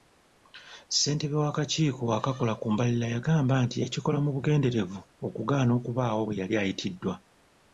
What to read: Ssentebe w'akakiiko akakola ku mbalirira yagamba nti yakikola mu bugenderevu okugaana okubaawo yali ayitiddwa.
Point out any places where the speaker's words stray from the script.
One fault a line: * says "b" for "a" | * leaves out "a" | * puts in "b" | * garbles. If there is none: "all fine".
* puts in "bwe"